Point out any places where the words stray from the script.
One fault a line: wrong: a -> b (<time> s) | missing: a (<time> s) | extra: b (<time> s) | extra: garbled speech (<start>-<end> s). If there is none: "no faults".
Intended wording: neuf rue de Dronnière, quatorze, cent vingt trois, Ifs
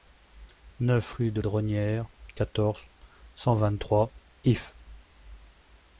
no faults